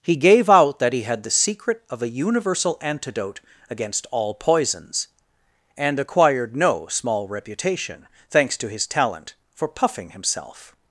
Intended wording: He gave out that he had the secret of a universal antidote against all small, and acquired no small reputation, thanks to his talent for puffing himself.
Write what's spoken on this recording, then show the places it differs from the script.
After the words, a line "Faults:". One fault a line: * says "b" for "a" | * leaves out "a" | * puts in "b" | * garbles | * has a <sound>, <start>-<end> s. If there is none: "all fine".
He gave out that he had the secret of a universal antidote against all poisons, and acquired no small reputation, thanks to his talent for puffing himself.
Faults:
* says "poisons" for "small"